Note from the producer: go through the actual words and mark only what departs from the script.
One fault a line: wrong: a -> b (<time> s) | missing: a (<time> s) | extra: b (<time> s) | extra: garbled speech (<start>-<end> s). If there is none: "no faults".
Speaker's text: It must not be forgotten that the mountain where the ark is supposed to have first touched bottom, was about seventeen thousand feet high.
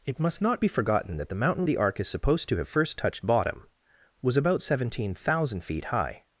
missing: where (1.7 s)